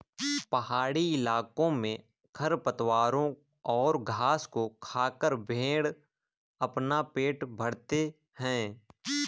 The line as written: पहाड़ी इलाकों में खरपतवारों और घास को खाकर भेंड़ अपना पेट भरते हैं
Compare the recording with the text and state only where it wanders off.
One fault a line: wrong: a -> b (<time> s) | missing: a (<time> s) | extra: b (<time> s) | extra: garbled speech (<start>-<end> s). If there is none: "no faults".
no faults